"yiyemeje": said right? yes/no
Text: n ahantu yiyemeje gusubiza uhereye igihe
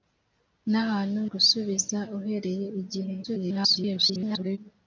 no